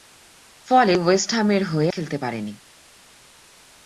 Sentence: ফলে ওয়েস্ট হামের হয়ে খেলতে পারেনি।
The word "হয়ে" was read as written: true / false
true